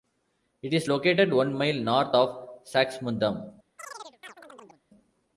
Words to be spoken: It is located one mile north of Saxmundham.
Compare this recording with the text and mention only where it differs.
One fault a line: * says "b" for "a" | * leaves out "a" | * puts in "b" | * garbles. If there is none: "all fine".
all fine